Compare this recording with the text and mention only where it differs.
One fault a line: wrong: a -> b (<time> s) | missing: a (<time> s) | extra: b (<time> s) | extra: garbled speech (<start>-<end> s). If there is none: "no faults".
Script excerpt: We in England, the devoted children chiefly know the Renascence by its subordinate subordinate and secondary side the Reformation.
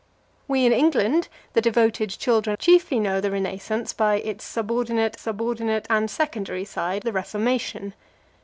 no faults